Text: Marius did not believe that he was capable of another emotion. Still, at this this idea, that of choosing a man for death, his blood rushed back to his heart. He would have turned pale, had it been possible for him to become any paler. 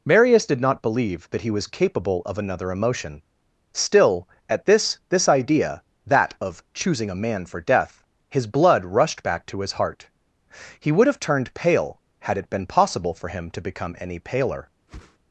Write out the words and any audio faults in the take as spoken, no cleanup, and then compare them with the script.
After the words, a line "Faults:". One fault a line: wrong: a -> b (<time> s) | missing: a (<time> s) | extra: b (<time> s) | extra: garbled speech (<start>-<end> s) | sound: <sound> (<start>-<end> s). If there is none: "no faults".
Marius did not believe that he was capable of another emotion. Still, at this this idea, that of choosing a man for death, his blood rushed back to his heart. He would have turned pale, had it been possible for him to become any paler.
Faults:
sound: whoosh (14.9-15.2 s)